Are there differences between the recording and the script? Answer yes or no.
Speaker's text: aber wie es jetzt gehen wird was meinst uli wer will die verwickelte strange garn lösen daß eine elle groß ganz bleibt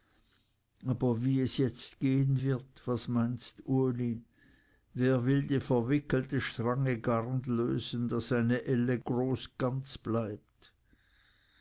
no